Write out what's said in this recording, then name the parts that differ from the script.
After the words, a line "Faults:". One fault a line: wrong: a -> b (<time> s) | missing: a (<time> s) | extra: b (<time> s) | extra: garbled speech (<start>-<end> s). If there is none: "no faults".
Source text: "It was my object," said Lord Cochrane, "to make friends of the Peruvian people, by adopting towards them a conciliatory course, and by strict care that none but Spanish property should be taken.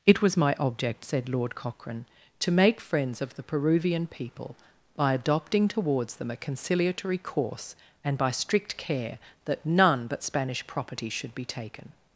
"It was my object," said Lord Cochrane, "to make friends of the Peruvian people, by adopting towards them a conciliatory course, and by strict care that none but Spanish property should be taken.
Faults:
no faults